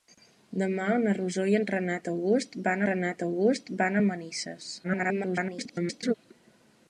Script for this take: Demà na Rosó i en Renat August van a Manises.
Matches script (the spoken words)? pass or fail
fail